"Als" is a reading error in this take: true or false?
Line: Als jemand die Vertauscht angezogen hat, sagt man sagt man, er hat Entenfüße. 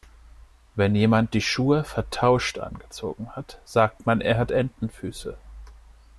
true